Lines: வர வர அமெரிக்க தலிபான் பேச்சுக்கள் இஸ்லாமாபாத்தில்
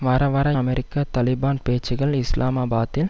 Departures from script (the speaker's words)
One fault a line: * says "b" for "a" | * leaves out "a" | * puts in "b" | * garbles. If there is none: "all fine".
all fine